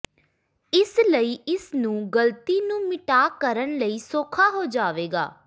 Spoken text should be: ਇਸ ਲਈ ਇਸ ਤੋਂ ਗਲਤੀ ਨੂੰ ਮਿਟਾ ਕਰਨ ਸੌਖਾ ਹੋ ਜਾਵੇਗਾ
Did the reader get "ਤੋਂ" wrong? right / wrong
wrong